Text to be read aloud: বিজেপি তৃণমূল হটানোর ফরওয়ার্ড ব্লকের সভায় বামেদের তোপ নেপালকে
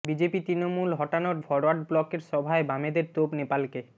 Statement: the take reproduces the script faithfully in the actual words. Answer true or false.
true